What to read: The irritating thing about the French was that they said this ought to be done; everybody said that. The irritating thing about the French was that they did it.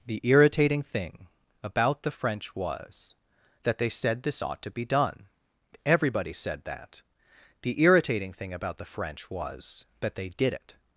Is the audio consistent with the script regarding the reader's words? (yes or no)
yes